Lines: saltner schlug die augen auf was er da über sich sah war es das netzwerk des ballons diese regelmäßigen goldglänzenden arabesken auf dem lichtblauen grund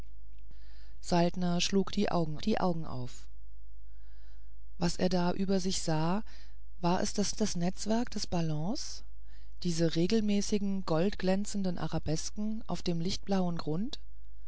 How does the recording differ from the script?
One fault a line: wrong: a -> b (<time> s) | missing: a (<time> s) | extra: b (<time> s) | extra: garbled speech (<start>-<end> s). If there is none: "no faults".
extra: die augen (2.4 s)
extra: das (7.3 s)